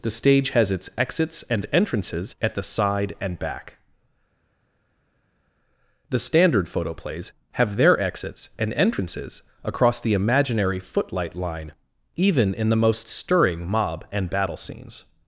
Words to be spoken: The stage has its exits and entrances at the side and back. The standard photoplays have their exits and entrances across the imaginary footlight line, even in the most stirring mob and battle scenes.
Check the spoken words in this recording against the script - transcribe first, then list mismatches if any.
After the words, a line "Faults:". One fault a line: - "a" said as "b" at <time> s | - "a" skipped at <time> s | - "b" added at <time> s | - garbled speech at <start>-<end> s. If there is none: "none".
The stage has its exits and entrances at the side and back. The standard photoplays have their exits and entrances across the imaginary footlight line, even in the most stirring mob and battle scenes.
Faults:
none